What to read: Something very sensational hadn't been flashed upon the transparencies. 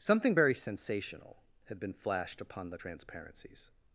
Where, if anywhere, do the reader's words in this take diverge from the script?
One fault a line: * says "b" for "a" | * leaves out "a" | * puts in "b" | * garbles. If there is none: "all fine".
* says "had" for "hadn't"